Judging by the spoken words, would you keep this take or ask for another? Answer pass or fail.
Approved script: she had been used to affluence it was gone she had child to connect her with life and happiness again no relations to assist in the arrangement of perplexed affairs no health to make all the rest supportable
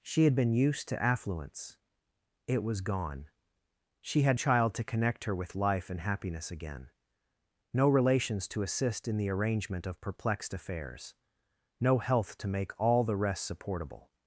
pass